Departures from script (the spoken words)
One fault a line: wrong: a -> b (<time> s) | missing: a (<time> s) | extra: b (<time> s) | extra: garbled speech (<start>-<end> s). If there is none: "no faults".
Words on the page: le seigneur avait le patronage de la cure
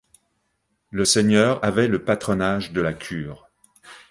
no faults